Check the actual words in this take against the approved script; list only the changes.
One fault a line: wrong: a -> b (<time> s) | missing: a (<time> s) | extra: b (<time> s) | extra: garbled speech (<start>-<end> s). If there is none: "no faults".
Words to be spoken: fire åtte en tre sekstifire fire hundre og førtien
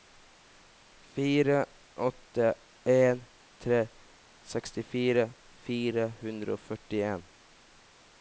no faults